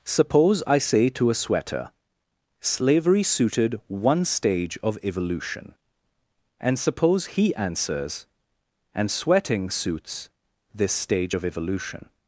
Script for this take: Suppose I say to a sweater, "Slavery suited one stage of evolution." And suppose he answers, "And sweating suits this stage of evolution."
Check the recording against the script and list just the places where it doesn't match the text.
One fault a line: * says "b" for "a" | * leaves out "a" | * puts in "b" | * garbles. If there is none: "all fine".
all fine